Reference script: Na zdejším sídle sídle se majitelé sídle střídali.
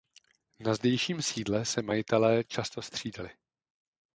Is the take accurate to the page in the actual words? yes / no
no